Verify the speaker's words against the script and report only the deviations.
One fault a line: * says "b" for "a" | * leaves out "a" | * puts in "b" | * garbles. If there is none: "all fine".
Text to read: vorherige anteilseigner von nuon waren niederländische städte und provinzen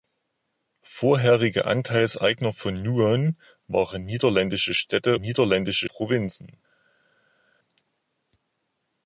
* says "niederländische" for "und"